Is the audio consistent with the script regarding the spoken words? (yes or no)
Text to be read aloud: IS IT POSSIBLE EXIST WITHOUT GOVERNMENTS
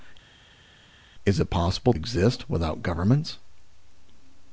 yes